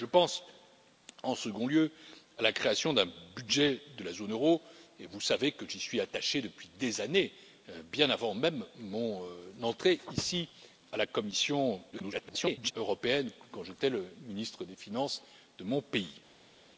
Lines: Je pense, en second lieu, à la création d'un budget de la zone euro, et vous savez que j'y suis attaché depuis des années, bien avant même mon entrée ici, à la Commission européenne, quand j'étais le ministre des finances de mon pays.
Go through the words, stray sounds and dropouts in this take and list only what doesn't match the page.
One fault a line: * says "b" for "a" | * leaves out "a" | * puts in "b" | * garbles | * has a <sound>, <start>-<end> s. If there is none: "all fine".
* garbles